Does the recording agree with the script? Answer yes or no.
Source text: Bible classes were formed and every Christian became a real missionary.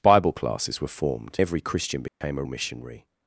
no